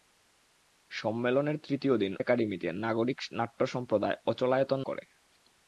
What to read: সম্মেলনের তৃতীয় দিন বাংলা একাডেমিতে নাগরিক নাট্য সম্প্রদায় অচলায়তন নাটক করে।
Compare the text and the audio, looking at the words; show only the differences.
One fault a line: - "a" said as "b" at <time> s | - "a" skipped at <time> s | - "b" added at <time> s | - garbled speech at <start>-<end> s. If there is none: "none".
- "বাংলা" skipped at 2.1 s
- "নাটক" skipped at 4.8 s